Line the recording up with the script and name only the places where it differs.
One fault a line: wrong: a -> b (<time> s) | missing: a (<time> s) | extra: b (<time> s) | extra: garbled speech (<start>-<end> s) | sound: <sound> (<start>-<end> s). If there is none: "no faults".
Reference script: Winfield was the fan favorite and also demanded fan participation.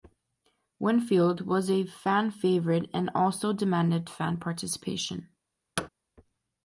wrong: the -> a (1.7 s)
sound: thud (5.8-5.9 s)